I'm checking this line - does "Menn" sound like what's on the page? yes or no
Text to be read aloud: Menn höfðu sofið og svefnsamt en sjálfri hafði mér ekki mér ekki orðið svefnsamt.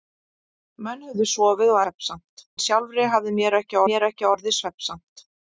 yes